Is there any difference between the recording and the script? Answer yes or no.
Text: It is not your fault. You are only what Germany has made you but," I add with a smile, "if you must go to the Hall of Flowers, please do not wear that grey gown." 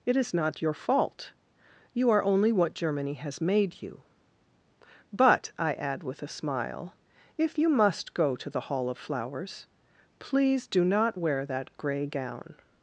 no